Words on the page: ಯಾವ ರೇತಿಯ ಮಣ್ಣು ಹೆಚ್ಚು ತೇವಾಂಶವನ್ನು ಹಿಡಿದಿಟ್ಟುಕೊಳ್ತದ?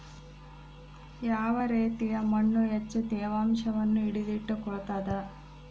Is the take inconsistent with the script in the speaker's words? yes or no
no